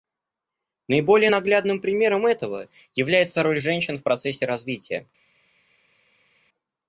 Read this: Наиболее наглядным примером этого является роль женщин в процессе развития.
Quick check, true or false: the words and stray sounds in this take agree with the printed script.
true